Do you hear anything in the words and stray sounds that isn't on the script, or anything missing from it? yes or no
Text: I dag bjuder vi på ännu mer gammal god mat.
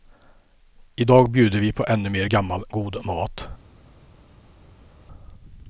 no